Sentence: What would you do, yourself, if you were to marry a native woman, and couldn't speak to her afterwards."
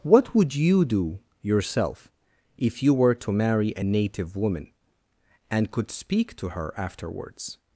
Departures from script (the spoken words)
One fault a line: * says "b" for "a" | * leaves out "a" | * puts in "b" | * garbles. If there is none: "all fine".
* says "could" for "couldn't"